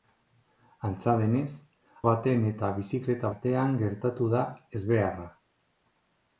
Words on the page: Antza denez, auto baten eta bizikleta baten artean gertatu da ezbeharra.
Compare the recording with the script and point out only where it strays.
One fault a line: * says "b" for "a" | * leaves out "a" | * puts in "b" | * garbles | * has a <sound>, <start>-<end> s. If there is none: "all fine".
* leaves out "auto"
* leaves out "baten"